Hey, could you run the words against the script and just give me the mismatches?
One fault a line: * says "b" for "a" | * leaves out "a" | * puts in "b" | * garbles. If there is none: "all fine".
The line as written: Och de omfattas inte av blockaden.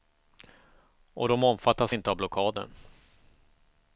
all fine